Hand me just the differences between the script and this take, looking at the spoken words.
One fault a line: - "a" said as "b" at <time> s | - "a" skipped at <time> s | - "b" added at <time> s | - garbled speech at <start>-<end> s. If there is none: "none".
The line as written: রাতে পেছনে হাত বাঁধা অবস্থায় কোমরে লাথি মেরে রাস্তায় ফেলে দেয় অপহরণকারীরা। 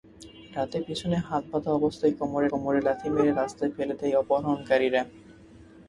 - "কোমরে" added at 2.5 s